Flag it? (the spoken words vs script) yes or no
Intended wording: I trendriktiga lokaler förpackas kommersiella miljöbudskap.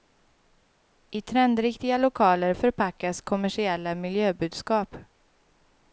no